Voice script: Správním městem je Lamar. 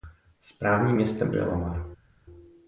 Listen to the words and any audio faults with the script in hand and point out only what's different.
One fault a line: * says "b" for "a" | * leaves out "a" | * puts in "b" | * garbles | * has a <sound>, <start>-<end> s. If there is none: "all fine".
all fine